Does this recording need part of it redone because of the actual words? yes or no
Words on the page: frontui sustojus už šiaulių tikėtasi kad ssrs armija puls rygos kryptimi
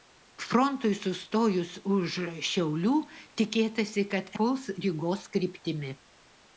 yes